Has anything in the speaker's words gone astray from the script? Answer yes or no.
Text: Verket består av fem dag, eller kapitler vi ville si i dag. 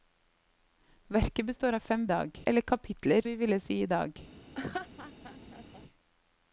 no